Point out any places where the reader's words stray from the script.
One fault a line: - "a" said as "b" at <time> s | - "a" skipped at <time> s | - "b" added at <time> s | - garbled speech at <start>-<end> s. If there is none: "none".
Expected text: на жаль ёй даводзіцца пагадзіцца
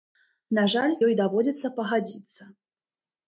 none